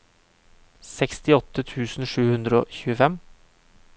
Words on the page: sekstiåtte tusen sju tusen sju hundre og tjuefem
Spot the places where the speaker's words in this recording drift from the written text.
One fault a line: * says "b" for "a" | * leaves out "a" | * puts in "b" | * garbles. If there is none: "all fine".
* leaves out "tusen sju"